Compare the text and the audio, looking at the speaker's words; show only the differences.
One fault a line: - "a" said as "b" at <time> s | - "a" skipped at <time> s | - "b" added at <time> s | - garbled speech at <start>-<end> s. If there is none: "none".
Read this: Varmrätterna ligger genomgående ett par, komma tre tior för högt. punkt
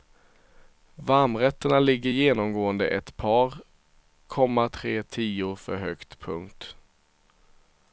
none